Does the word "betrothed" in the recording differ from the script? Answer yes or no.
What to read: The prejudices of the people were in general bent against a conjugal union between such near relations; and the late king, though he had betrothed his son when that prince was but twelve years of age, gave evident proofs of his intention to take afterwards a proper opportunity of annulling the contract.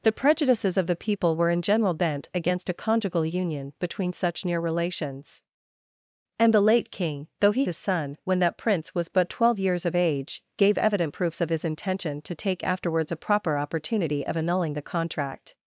yes